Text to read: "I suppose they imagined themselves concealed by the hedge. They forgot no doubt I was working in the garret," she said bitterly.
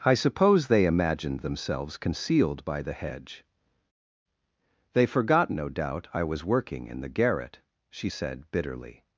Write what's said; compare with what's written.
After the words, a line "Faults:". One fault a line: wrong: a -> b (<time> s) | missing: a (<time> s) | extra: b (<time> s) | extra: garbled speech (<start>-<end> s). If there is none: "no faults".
"I suppose they imagined themselves concealed by the hedge. They forgot no doubt I was working in the garret," she said bitterly.
Faults:
no faults